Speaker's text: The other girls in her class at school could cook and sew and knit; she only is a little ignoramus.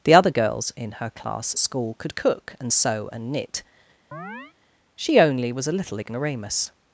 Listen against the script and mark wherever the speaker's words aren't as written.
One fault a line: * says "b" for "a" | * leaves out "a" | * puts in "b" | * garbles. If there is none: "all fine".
* says "was" for "is"